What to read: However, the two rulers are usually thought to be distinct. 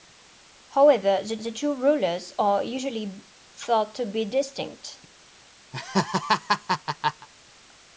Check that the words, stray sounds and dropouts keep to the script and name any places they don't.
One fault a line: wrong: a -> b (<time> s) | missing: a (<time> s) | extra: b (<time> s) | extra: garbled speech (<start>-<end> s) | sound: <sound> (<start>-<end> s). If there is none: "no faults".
extra: the (1.4 s)
sound: laugh (5.7-7.3 s)